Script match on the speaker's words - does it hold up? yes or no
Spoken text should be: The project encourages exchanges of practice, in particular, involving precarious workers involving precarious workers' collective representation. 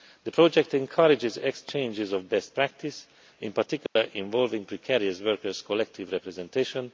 no